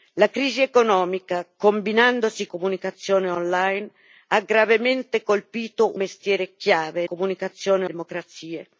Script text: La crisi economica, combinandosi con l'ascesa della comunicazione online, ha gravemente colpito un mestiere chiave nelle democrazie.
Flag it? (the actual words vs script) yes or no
yes